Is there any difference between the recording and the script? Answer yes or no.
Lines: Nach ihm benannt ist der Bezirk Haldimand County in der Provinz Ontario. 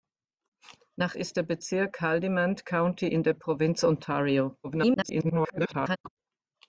yes